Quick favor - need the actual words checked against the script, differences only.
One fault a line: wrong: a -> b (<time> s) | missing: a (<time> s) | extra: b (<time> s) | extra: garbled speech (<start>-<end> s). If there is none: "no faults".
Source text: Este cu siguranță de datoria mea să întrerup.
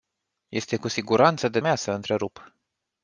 missing: datoria (1.6 s)